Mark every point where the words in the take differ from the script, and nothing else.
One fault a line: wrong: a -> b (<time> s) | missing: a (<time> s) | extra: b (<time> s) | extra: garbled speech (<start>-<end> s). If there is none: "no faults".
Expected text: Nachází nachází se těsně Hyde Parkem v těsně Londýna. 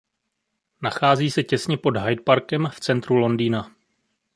missing: nachází (1.3 s)
extra: pod (1.8 s)
wrong: těsně -> centru (2.8 s)